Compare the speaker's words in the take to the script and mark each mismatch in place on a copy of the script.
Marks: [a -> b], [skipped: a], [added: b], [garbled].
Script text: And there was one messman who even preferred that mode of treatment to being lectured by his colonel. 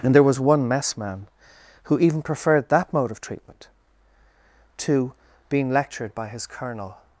And there was one messman who even preferred that mode of treatment to being lectured by his colonel.